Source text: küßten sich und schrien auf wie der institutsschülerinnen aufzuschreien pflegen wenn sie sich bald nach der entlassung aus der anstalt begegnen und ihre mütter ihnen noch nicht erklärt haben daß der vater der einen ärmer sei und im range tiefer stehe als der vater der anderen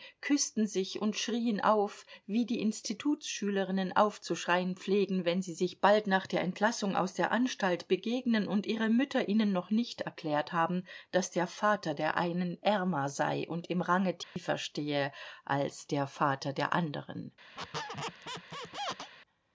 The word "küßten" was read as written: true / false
true